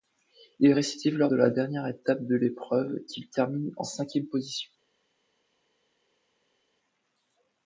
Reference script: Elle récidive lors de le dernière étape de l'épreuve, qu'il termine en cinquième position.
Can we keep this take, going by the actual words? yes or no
no